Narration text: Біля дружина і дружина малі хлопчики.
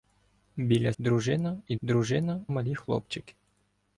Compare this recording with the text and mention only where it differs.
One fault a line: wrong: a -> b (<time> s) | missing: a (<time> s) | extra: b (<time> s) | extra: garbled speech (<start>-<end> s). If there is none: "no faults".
no faults